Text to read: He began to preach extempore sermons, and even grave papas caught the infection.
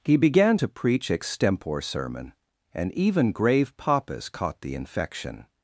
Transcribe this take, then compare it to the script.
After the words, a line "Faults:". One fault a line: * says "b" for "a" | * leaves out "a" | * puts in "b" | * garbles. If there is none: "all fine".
He began to preach extempore sermon, and even grave papas caught the infection.
Faults:
* says "sermon" for "sermons"